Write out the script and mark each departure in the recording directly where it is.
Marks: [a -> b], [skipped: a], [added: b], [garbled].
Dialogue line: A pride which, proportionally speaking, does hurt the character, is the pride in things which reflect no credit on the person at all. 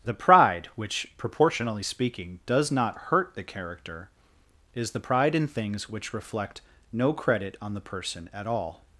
[A -> The] pride which, proportionally speaking, does [added: not] hurt the character, is the pride in things which reflect no credit on the person at all.